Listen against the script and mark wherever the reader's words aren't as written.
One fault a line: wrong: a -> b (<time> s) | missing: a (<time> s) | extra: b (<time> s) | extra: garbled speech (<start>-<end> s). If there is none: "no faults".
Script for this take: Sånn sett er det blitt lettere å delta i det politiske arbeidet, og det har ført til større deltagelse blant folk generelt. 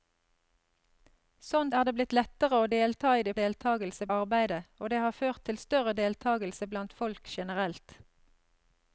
missing: sett (1.7 s)
wrong: politiske -> deltagelse (3.4 s)